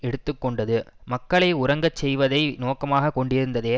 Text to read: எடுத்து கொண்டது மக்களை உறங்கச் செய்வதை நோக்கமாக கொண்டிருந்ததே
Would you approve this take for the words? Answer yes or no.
yes